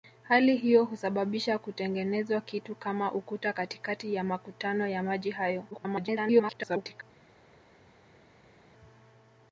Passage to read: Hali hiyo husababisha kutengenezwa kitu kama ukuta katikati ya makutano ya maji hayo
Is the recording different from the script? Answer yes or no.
yes